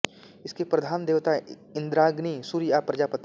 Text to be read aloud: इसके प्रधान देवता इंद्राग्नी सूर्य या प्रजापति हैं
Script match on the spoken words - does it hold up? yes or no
yes